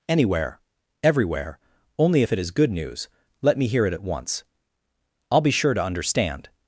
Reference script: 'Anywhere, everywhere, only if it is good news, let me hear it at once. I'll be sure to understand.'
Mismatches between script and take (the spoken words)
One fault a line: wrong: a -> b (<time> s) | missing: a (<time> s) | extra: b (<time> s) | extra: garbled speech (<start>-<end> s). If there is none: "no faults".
no faults